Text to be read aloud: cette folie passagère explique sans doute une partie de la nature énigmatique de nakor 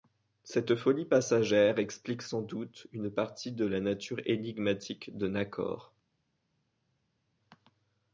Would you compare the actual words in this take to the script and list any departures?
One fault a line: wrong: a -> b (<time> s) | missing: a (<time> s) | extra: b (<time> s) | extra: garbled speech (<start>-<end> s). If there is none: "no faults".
no faults